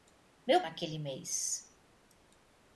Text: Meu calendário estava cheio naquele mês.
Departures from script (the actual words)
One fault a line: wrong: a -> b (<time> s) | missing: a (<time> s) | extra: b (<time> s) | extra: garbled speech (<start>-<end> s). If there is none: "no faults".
missing: calendário estava cheio (0.6 s)